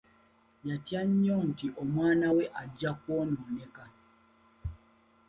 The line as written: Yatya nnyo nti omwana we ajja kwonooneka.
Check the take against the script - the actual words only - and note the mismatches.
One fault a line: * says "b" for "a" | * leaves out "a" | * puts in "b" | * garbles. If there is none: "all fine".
all fine